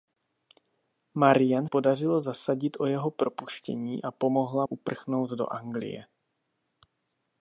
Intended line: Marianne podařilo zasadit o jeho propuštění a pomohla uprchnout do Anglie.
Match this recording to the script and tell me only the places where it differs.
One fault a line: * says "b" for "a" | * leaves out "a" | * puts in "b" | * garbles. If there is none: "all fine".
all fine